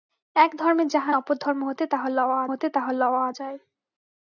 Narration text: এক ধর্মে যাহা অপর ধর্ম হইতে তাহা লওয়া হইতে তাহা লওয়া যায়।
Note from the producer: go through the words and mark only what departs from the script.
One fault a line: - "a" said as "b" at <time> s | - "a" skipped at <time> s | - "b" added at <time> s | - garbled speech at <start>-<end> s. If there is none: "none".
none